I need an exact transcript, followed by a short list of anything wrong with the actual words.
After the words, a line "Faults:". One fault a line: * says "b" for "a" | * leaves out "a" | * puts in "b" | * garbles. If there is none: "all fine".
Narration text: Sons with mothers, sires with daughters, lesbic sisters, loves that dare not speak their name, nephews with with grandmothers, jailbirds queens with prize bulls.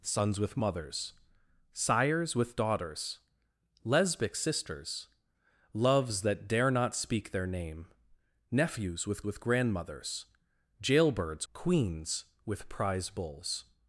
Sons with mothers, sires with daughters, lesbic sisters, loves that dare not speak their name, nephews with with grandmothers, jailbirds queens with prize bulls.
Faults:
all fine